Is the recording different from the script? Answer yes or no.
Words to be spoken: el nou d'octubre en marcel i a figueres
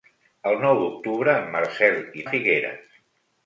no